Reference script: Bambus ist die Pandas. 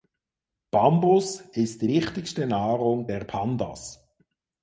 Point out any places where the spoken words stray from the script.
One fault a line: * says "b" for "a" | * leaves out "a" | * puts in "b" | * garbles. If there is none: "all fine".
* puts in "wichtigste Nahrung der"